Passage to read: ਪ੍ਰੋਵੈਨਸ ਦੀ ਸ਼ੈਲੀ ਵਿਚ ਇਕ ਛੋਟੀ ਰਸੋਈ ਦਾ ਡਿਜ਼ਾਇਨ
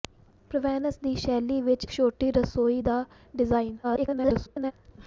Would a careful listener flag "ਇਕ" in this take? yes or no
yes